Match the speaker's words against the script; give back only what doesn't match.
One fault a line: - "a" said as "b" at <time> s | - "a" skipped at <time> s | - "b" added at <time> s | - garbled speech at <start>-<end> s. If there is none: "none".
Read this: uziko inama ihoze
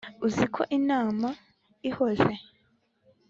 none